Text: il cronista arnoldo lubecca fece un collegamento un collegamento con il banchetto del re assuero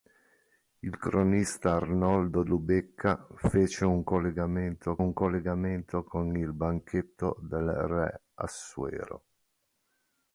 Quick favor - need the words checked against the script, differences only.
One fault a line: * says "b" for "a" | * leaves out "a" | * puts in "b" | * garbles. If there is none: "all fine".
all fine